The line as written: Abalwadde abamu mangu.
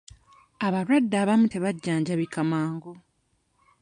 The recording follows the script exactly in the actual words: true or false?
false